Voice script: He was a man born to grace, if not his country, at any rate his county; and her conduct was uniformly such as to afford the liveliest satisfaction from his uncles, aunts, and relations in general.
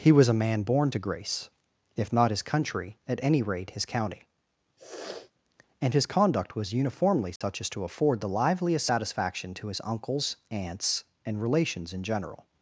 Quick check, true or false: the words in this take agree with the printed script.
false